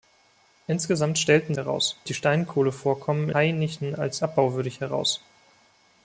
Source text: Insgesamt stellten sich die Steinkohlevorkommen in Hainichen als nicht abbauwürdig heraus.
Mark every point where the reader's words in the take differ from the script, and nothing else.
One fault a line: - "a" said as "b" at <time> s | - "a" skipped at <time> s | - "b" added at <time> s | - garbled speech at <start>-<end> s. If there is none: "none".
- "sich" said as "heraus" at 1.6 s
- "in" skipped at 3.3 s
- "nicht" skipped at 4.2 s